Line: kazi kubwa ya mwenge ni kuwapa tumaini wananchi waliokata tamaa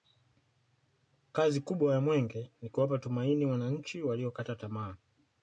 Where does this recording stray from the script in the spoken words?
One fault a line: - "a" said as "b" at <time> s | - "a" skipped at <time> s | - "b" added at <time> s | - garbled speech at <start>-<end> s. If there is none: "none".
none